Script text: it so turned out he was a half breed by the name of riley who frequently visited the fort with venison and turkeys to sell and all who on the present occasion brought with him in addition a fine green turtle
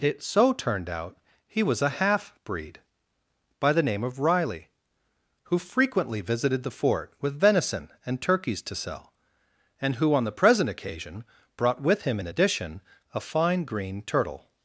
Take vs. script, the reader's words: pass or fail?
fail